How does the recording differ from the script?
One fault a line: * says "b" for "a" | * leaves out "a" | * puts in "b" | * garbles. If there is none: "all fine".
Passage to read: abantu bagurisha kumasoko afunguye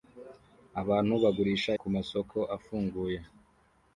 all fine